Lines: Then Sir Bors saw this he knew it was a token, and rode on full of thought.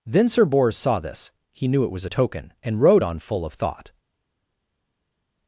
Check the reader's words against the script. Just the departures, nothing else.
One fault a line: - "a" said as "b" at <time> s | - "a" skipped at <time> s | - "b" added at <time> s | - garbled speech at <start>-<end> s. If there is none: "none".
none